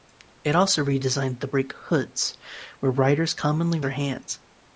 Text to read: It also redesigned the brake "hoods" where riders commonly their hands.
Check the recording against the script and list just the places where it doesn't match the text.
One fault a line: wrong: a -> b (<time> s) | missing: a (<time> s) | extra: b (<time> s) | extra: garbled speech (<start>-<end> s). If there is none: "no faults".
no faults